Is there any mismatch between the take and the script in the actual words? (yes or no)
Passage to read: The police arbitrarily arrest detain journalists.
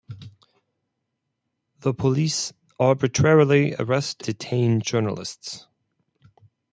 no